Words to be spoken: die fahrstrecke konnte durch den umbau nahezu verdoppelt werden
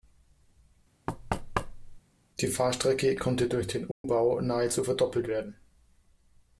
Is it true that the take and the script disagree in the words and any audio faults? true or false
true